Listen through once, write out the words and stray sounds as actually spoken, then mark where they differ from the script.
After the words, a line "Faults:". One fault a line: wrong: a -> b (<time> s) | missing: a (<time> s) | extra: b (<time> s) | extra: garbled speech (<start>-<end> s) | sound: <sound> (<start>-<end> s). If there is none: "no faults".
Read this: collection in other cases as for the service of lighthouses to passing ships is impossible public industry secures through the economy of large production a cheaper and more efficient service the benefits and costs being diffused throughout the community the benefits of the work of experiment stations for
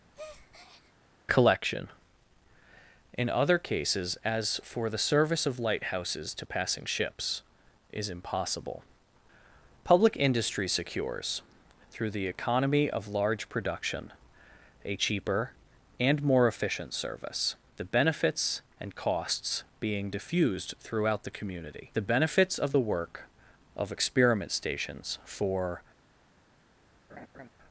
collection in other cases as for the service of lighthouses to passing ships is impossible public industry secures through the economy of large production a cheaper and more efficient service the benefits and costs being diffused throughout the community the benefits of the work of experiment stations for
Faults:
sound: breath (0.1-0.9 s)
sound: laugh (27.1-27.5 s)